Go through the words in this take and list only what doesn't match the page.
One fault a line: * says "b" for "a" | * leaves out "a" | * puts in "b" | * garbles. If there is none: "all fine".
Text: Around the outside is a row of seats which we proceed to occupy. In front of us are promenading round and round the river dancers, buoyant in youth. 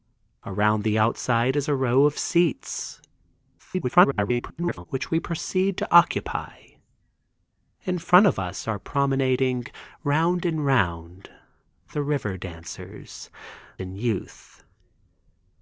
* garbles
* leaves out "buoyant"